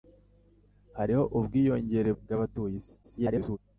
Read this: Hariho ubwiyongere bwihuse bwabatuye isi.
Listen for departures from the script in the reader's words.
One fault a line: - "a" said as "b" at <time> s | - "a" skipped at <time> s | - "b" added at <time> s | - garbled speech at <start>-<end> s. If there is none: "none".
- "bwihuse" skipped at 2.1 s
- garbled speech at 3.0-3.6 s